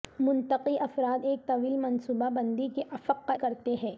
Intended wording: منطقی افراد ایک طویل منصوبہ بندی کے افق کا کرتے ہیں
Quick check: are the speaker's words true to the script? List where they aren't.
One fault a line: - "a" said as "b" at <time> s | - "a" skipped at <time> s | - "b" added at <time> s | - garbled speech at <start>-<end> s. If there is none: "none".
none